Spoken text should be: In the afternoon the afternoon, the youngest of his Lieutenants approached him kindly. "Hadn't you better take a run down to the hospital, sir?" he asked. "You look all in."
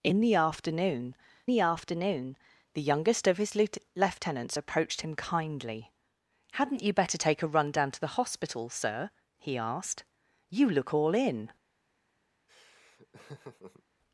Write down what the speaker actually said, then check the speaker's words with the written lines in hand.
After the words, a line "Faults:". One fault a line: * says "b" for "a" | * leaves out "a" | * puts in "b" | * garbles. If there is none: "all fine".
In the afternoon the afternoon, the youngest of his Lieutenants approached him kindly. "Hadn't you better take a run down to the hospital, sir?" he asked. "You look all in."
Faults:
all fine